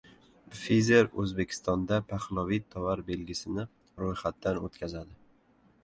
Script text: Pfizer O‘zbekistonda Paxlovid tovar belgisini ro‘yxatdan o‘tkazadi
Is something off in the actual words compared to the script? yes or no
no